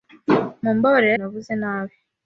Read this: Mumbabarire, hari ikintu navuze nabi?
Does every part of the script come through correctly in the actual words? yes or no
no